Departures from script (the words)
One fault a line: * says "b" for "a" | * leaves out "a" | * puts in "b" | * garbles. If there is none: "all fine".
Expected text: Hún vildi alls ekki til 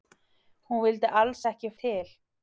all fine